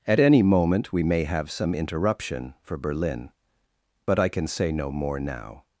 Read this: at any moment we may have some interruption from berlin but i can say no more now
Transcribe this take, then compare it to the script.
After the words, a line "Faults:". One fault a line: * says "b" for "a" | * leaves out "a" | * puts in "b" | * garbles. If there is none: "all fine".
at any moment we may have some interruption for berlin but i can say no more now
Faults:
* says "for" for "from"